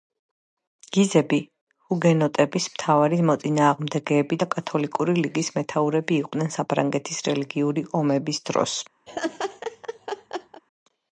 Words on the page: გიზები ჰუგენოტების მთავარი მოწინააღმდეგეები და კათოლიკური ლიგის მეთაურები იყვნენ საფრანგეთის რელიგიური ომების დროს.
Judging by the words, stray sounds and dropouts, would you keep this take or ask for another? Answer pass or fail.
fail